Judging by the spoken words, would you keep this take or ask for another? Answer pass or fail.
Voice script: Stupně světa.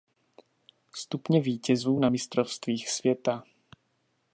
fail